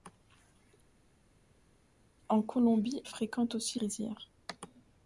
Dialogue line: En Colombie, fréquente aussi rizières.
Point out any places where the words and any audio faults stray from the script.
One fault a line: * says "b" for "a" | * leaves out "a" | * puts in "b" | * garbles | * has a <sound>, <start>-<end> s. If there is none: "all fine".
all fine